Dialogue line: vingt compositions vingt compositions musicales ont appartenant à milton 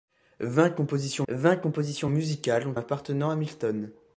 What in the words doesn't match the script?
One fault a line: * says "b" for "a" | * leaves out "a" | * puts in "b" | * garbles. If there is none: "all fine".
all fine